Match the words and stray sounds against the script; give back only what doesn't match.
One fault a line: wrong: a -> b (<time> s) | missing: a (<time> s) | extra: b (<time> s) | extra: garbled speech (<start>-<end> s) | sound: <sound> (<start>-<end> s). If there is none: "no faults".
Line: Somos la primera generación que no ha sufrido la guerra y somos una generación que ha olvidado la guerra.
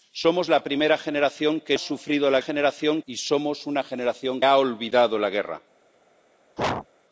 missing: no (1.8 s)
wrong: guerra -> generación (2.4 s)
missing: que (4.4 s)
sound: sneeze (6.6-6.9 s)